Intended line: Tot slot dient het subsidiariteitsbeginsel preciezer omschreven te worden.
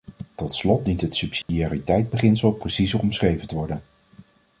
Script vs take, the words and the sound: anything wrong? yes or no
yes